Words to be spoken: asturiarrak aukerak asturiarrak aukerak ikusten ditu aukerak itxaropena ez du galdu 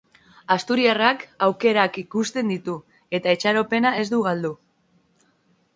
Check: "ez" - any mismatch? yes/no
no